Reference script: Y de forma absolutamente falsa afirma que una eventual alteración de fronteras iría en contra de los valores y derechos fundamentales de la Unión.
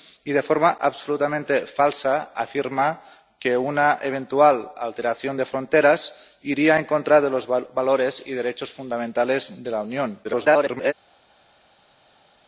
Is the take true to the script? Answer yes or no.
no